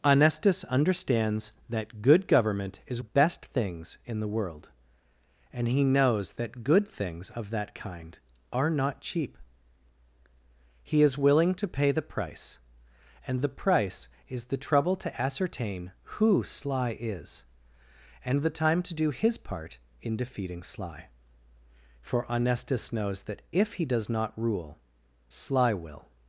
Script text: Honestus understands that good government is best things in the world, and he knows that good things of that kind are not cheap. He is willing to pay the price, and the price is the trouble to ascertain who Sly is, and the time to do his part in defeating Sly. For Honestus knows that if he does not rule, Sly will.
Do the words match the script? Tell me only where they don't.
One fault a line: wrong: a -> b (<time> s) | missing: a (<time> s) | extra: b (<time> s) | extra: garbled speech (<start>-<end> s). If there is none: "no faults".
no faults